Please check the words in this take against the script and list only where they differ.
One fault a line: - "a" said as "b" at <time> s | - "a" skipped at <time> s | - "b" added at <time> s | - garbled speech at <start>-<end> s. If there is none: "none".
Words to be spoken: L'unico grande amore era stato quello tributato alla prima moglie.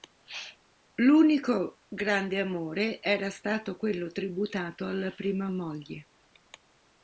none